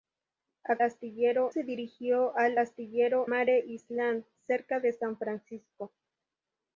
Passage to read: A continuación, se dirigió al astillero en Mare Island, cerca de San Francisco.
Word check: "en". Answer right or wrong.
wrong